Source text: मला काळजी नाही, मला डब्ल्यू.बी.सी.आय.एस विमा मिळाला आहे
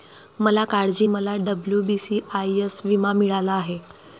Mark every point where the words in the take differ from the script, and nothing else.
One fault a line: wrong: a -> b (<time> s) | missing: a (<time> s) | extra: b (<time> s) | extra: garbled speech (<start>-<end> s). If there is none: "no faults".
missing: नाही (1.1 s)